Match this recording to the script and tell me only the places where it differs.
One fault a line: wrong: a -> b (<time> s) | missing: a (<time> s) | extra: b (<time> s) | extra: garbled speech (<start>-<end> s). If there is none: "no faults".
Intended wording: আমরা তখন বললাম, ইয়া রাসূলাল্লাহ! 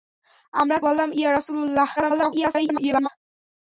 missing: তখন (0.8 s)
extra: garbled speech (2.0-3.1 s)